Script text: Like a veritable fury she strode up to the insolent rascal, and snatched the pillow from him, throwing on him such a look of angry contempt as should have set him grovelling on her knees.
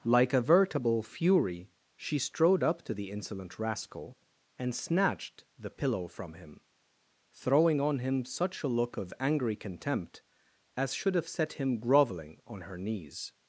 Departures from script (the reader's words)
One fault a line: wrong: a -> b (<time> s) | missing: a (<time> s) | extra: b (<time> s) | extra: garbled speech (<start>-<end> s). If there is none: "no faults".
no faults